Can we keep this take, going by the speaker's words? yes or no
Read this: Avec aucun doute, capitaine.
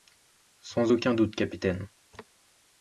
no